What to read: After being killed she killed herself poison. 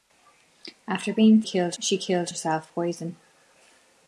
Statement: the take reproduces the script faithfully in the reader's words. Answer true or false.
true